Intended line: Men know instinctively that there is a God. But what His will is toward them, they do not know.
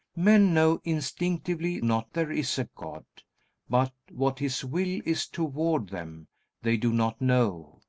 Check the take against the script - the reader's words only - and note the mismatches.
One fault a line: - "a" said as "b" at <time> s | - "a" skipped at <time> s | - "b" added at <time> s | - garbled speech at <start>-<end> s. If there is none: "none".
- "that" said as "not" at 1.8 s